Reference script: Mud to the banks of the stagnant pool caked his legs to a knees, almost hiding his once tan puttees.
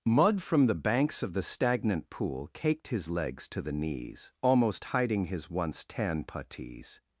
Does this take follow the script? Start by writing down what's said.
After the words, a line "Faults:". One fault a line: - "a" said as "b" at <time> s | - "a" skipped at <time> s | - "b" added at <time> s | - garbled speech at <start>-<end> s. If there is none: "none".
Mud from the banks of the stagnant pool caked his legs to the knees, almost hiding his once tan puttees.
Faults:
- "to" said as "from" at 0.4 s
- "a" said as "the" at 3.6 s